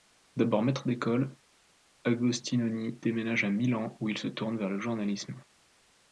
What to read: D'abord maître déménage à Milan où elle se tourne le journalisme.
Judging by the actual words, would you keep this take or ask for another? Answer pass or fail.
fail